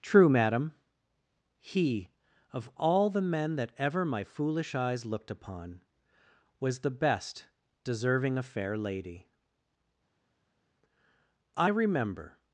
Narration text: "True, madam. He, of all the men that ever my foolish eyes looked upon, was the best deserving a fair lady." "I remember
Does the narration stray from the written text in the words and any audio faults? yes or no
no